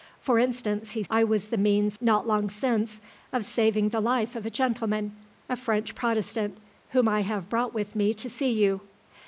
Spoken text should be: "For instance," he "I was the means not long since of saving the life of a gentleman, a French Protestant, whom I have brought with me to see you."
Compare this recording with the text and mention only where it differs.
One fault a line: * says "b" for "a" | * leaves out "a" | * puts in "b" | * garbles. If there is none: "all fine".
all fine